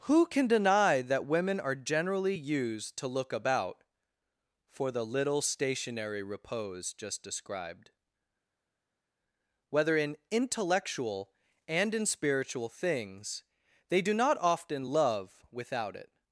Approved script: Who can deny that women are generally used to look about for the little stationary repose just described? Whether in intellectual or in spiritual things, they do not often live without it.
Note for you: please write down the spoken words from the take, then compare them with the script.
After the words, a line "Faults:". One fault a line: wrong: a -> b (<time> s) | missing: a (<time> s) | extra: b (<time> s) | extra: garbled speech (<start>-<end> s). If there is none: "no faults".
Who can deny that women are generally used to look about for the little stationary repose just described? Whether in intellectual and in spiritual things, they do not often love without it.
Faults:
wrong: or -> and (11.7 s)
wrong: live -> love (14.8 s)